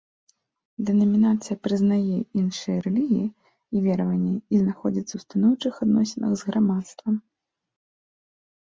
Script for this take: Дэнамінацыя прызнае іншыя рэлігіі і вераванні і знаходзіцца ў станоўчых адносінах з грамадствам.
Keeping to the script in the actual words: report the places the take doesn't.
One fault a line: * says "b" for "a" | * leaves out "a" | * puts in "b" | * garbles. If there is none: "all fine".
all fine